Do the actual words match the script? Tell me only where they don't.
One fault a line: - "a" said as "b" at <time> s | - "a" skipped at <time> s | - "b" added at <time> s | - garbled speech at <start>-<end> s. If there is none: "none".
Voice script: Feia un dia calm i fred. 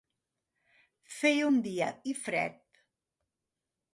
- "calm" skipped at 1.9 s